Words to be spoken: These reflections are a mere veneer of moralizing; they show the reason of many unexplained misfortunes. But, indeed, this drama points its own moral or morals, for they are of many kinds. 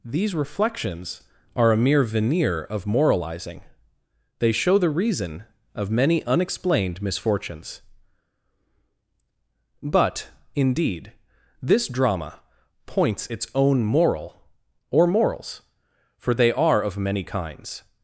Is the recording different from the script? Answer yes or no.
no